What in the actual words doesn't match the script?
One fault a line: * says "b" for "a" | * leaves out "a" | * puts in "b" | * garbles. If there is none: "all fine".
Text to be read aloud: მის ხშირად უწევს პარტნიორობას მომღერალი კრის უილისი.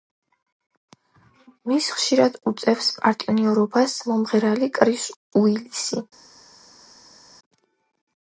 all fine